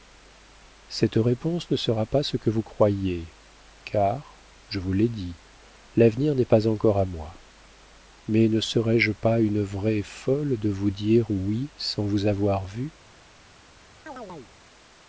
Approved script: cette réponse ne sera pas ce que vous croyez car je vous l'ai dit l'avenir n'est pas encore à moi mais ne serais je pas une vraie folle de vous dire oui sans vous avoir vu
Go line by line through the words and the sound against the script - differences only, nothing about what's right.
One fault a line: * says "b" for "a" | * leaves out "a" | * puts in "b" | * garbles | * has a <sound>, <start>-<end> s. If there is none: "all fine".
* has a chirp, 14.1-14.5 s